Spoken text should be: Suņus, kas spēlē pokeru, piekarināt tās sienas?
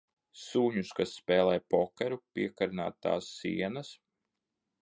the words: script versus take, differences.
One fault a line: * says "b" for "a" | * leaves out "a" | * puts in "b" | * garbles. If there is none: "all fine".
all fine